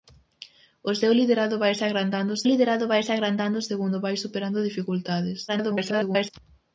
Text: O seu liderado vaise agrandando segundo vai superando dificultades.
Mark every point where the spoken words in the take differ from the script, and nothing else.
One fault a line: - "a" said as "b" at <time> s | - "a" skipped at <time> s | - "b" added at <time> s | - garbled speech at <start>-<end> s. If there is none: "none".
- "liderado vaise agrandando" added at 2.5 s
- garbled speech at 5.5-6.3 s